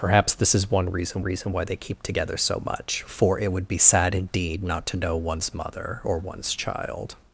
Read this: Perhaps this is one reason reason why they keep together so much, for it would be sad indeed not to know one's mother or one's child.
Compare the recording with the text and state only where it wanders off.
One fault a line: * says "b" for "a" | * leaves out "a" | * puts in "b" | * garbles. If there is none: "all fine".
all fine